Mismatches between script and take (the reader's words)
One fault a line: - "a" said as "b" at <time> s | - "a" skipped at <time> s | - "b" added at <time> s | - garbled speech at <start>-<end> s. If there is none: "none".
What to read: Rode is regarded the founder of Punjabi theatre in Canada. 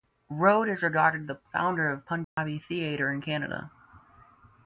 none